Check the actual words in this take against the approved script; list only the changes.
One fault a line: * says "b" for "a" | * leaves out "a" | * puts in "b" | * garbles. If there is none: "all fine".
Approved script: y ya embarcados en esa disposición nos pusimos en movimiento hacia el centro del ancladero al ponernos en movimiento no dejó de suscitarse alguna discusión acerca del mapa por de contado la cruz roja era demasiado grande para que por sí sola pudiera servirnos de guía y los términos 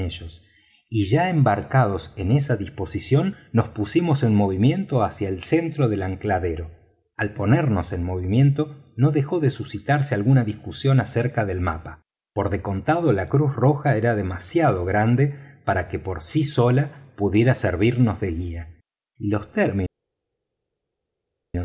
all fine